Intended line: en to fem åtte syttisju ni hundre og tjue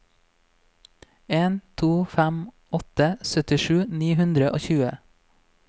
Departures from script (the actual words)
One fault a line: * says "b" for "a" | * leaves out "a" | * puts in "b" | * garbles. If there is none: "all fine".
all fine